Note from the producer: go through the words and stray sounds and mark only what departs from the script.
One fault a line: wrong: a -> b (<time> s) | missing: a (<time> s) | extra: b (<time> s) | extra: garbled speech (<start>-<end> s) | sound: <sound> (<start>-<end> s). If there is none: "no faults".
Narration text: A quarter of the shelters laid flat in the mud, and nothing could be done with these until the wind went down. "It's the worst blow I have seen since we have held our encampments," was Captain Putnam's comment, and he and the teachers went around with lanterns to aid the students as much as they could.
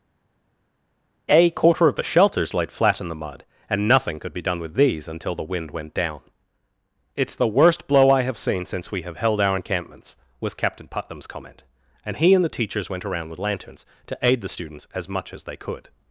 no faults